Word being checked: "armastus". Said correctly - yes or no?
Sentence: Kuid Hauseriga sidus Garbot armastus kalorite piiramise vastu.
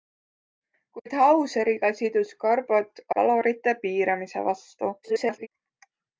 no